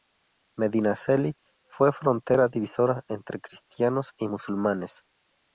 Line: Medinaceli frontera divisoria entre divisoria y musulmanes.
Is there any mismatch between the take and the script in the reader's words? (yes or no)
yes